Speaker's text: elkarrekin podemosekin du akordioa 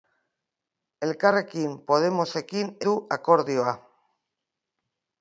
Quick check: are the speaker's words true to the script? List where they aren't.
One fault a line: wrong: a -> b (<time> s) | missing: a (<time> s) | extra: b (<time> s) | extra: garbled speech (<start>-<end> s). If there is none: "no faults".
no faults